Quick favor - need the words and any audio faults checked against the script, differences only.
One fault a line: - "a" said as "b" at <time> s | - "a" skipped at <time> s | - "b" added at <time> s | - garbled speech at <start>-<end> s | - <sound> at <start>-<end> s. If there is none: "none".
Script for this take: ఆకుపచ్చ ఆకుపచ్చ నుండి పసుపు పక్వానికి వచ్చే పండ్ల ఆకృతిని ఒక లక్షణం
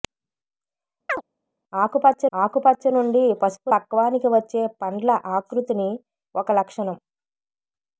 - chirp at 1.1-1.2 s